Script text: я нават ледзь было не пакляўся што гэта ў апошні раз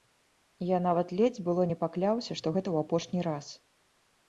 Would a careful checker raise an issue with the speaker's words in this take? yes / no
no